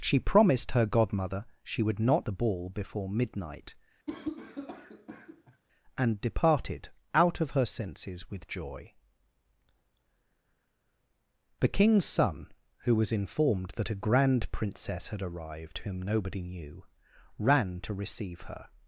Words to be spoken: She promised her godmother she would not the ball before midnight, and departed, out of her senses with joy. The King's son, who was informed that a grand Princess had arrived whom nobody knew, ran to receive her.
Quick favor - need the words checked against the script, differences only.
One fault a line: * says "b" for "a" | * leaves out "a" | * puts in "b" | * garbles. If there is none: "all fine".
all fine